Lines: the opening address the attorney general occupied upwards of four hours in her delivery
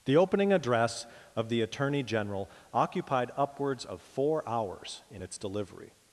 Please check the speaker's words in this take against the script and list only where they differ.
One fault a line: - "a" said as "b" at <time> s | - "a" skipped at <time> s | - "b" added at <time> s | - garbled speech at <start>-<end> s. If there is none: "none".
- "of" added at 1.4 s
- "her" said as "its" at 5.2 s